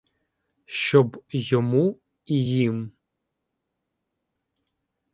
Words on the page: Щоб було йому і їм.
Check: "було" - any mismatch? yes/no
yes